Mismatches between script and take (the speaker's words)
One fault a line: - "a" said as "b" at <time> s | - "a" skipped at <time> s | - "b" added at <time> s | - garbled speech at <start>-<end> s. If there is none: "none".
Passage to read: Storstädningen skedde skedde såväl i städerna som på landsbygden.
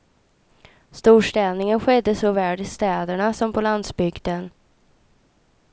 - "skedde" skipped at 2.1 s